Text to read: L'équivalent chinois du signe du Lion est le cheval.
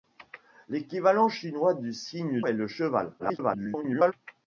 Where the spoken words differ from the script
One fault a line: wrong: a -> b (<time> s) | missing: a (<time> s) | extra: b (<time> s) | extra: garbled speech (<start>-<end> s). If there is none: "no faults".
missing: du Lion (2.4 s)
extra: garbled speech (3.2-4.1 s)